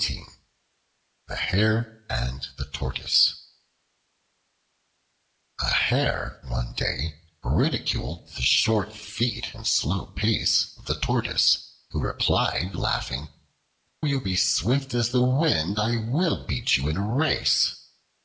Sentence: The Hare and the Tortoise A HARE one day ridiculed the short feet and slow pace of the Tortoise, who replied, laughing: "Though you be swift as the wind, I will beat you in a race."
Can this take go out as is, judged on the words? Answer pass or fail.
fail